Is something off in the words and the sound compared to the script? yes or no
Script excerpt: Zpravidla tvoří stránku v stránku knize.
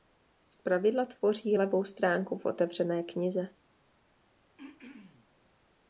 yes